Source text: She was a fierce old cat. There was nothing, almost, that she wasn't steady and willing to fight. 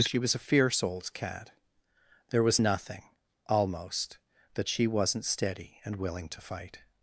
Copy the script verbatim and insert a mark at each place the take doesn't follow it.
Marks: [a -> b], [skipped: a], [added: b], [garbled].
She was a fierce old cat. There was nothing, almost, that she wasn't steady and willing to fight.